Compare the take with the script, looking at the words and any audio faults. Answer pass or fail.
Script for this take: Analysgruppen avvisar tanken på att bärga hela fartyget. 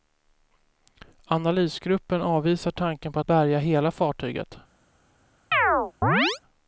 fail